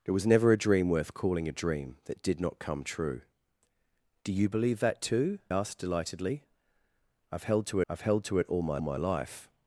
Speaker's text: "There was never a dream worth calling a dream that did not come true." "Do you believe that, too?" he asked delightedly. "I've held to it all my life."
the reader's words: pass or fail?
fail